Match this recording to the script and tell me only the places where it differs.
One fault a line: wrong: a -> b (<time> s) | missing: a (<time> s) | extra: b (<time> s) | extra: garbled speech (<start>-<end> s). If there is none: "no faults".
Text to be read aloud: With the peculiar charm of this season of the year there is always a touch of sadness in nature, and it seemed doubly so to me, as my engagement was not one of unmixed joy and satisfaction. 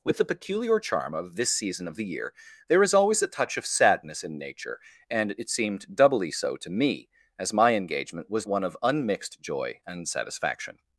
missing: not (8.5 s)